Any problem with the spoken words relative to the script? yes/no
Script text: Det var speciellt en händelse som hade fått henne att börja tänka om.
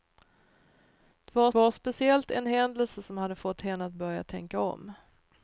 yes